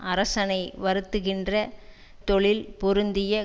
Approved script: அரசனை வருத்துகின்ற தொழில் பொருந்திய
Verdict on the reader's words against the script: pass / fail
pass